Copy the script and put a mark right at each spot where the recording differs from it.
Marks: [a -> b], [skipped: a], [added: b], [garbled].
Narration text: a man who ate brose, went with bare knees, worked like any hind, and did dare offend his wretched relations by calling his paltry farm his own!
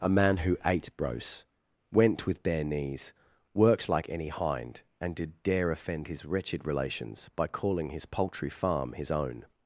a man who ate brose, went with bare knees, worked like any hind, and did dare offend his wretched relations by calling his paltry farm his own!